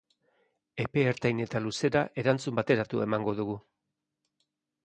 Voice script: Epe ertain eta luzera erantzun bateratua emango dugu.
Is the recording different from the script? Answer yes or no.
no